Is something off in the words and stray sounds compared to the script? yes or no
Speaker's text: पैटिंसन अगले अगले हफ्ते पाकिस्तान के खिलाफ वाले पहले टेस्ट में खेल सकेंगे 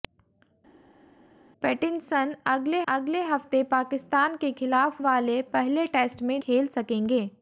no